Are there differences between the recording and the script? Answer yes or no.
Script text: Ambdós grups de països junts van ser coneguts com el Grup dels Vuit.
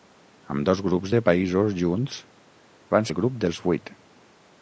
yes